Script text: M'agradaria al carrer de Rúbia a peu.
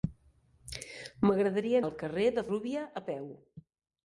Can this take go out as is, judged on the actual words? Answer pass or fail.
pass